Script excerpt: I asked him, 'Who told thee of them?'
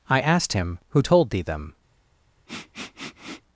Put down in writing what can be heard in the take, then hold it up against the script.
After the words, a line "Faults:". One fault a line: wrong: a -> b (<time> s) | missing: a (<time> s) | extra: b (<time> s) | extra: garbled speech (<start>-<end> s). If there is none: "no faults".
I asked him, 'Who told thee them?'
Faults:
missing: of (1.4 s)